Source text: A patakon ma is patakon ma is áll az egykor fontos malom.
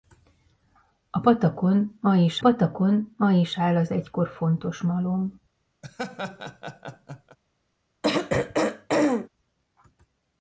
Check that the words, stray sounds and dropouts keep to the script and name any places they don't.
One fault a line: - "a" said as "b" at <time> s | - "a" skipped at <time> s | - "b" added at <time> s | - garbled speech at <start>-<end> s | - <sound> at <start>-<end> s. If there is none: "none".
- laugh at 5.8-7.4 s
- throat clearing at 8.0-9.3 s